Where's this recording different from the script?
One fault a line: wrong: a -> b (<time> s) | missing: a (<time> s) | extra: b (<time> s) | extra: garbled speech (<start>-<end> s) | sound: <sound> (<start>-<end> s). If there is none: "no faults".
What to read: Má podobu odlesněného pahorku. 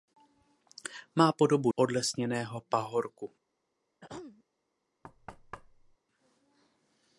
sound: throat clearing (4.0-4.4 s)
sound: thud (5.0-6.0 s)